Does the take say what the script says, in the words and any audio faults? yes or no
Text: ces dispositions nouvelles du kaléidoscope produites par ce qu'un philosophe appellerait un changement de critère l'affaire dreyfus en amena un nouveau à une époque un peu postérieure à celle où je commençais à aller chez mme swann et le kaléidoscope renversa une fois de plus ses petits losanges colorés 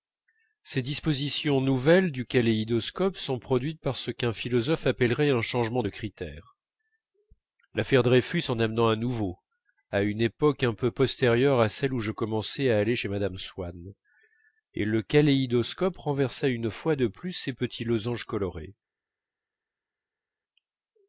no